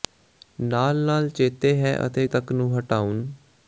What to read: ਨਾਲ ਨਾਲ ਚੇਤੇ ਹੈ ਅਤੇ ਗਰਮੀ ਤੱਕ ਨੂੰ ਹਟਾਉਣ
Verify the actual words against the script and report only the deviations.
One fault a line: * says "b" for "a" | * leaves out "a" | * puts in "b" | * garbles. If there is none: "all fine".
* leaves out "ਗਰਮੀ"